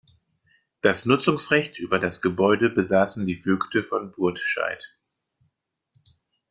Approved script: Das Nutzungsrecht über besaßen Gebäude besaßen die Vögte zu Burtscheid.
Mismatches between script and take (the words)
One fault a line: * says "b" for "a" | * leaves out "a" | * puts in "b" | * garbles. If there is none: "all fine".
* says "das" for "besaßen"
* says "von" for "zu"